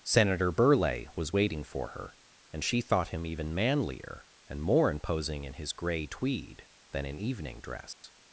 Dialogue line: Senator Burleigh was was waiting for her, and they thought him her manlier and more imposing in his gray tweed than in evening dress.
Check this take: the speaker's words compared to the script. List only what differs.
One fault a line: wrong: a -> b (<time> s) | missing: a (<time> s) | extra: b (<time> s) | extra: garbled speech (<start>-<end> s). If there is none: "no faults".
missing: was (1.4 s)
wrong: they -> she (2.6 s)
wrong: her -> even (3.2 s)